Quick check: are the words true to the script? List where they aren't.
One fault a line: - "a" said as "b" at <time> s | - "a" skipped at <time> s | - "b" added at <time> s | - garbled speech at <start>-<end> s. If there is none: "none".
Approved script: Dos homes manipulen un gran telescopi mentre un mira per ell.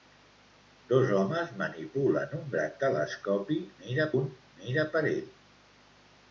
- "mentre" said as "mira" at 3.8 s